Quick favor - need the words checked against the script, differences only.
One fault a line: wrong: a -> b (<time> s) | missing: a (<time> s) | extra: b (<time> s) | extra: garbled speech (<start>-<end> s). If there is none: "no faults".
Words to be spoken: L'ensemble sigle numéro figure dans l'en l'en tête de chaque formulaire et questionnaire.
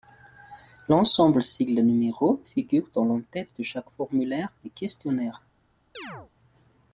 missing: l'en (3.2 s)